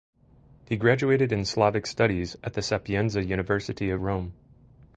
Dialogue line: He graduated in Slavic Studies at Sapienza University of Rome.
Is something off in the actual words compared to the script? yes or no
yes